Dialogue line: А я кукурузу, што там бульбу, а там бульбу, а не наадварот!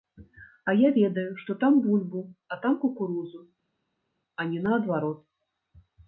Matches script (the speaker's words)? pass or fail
fail